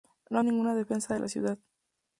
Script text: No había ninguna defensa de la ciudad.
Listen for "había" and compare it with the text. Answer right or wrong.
wrong